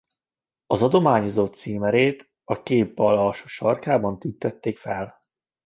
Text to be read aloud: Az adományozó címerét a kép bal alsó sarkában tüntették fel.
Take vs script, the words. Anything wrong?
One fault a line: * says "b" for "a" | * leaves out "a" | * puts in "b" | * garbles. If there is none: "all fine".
all fine